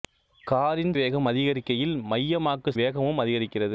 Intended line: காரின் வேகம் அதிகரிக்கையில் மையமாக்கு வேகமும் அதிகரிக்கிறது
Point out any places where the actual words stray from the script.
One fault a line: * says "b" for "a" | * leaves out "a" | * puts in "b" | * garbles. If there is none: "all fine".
all fine